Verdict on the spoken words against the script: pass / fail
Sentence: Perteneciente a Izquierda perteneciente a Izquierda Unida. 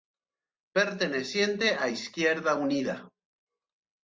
fail